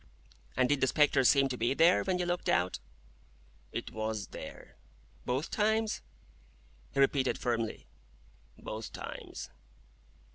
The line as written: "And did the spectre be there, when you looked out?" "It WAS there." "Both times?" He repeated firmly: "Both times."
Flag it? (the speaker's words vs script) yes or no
yes